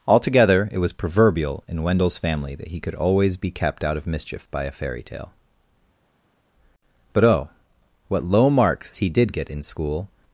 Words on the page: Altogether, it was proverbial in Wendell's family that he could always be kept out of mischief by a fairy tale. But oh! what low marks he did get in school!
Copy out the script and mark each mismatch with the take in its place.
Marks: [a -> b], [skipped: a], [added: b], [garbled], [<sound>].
Altogether, it was proverbial in Wendell's family that he could always be kept out of mischief by a fairy tale. But oh! what low marks he did get in school!